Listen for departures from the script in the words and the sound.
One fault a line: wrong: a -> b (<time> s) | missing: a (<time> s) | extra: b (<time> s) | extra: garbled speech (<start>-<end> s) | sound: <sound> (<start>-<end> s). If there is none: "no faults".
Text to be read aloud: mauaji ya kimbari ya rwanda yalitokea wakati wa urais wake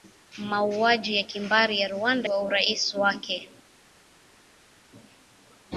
missing: yalitokea wakati (2.3 s)